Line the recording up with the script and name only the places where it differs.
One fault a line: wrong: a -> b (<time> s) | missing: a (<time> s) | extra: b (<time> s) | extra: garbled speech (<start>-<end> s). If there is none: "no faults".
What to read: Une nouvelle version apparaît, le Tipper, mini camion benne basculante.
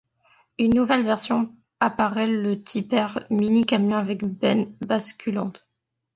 extra: avec (4.0 s)